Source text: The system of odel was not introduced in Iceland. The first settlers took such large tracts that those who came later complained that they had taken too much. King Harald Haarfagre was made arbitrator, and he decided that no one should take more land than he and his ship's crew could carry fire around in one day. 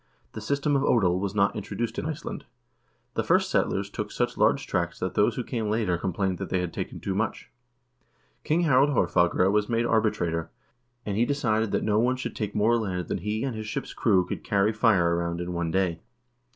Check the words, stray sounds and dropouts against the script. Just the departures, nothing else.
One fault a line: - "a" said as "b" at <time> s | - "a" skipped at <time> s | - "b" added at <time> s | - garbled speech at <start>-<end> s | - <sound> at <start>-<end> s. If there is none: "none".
none